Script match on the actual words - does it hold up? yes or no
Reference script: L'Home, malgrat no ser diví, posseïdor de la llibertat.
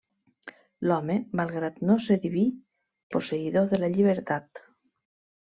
yes